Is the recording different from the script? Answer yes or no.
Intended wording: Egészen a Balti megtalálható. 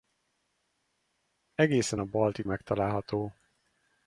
no